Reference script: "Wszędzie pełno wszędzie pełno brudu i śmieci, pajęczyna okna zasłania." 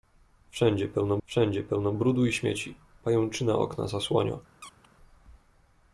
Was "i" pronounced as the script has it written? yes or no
yes